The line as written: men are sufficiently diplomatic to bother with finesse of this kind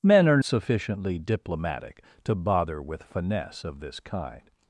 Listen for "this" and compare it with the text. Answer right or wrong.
right